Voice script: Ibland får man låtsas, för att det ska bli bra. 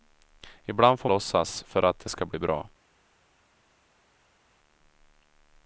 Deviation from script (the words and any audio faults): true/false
true